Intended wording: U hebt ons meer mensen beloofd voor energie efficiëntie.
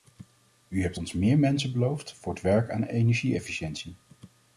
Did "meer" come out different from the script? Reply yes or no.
no